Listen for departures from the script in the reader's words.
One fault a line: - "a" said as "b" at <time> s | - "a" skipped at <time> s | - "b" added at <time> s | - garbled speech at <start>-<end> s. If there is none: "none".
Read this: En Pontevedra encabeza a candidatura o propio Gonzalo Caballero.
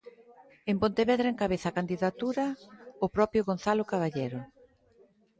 none